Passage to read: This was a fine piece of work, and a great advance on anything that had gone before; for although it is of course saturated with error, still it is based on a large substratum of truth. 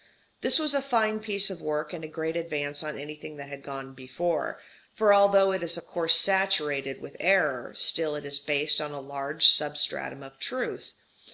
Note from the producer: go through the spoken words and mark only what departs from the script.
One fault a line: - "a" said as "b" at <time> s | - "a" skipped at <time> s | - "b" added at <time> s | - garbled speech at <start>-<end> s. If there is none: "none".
none